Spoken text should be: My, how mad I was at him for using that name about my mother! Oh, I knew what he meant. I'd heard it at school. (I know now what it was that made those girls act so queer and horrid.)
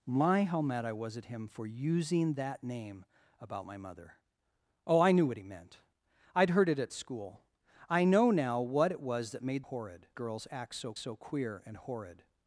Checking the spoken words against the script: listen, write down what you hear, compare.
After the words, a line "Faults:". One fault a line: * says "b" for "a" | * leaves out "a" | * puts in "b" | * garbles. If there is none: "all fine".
My, how mad I was at him for using that name about my mother! Oh, I knew what he meant. I'd heard it at school. (I know now what it was that made horrid girls act so so queer and horrid.)
Faults:
* says "horrid" for "those"
* puts in "so"